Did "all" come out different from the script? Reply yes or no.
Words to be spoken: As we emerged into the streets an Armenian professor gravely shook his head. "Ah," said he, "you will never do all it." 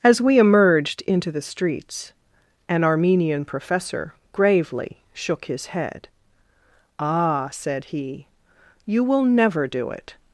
yes